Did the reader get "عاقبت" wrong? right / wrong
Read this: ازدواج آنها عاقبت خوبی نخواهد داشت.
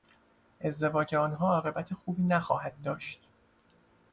right